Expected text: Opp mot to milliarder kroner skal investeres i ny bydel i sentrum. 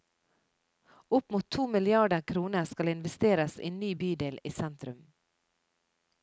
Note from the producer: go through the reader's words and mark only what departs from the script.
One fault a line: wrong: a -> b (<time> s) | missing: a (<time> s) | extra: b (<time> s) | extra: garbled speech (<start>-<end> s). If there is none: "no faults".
no faults